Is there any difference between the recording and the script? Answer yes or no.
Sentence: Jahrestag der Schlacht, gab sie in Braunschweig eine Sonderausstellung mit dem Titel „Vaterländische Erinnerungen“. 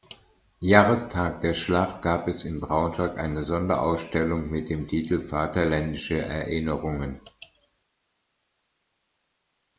yes